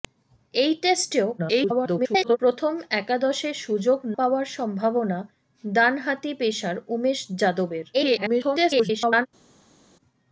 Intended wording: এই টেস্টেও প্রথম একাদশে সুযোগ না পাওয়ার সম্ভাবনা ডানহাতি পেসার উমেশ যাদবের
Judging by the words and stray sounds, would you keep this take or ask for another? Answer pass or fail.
fail